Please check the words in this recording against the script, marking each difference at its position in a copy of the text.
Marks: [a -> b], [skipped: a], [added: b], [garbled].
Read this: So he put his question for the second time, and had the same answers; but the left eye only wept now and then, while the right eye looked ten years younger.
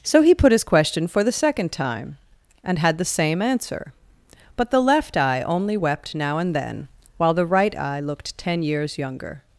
So he put his question for the second time, and had the same [answers; -> answer] but the left eye only wept now and then, while the right eye looked ten years younger.